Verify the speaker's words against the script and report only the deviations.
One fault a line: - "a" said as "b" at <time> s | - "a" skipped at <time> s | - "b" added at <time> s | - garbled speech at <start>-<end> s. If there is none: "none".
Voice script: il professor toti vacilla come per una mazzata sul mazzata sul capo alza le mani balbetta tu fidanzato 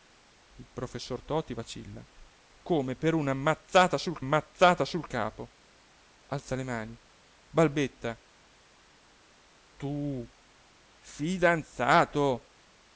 none